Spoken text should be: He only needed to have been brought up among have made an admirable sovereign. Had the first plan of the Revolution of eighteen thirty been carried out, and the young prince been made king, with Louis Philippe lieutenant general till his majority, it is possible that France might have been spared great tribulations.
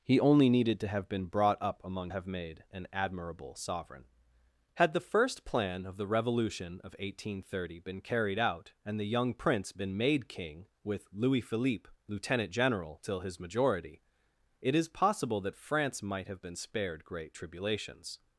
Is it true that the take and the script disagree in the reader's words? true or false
false